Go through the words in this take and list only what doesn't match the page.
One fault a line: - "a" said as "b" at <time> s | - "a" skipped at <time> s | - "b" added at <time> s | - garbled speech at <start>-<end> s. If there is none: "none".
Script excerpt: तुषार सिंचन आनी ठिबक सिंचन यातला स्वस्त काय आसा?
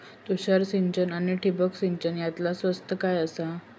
none